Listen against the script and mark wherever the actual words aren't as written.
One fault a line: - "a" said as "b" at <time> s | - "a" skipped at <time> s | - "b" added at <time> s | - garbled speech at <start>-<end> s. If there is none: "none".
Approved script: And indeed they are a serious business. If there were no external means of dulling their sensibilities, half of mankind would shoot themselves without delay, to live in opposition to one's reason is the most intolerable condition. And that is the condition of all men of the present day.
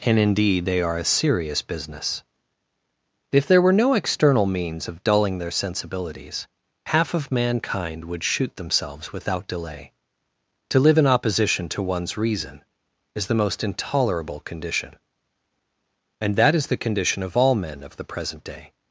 none